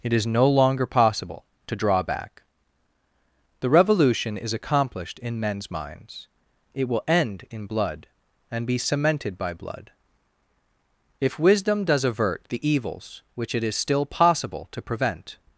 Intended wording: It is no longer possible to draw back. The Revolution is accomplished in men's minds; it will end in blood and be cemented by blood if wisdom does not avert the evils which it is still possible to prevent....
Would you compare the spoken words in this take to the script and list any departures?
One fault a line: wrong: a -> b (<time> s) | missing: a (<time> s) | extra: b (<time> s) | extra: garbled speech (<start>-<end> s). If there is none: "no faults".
missing: not (12.0 s)